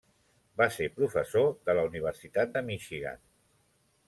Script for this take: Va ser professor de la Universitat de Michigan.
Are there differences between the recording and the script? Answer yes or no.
no